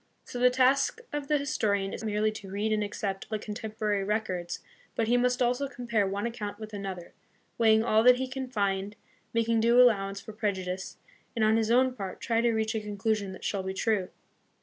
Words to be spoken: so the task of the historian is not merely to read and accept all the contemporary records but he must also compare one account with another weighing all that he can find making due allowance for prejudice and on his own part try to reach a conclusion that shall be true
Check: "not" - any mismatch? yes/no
yes